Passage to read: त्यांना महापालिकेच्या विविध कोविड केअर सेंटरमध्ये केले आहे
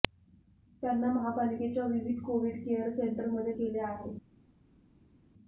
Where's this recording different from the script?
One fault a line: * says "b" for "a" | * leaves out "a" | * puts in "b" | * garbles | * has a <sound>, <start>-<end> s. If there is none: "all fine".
all fine